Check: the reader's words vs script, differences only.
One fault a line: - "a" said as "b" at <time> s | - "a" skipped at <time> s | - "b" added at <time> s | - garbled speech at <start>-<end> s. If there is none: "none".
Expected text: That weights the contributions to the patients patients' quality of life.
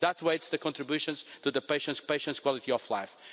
none